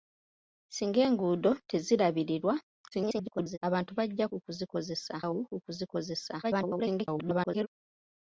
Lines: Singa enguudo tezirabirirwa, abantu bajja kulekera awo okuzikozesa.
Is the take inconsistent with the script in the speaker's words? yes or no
yes